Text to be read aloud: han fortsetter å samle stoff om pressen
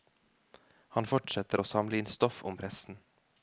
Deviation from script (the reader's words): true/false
true